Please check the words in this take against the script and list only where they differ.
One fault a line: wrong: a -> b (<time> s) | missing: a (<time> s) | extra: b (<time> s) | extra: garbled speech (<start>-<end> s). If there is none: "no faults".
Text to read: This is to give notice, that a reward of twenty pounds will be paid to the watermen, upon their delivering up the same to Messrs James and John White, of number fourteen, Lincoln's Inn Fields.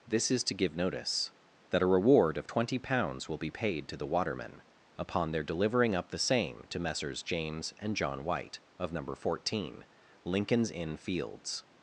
no faults